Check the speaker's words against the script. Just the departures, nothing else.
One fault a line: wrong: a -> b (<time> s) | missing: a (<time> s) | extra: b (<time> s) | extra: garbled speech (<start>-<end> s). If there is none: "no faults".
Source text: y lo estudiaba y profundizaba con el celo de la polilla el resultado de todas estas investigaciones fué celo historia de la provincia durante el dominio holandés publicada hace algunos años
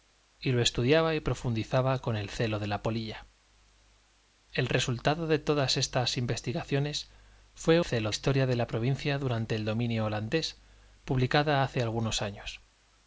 no faults